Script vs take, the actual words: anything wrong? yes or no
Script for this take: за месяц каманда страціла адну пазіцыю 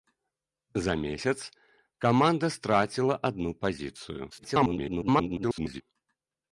yes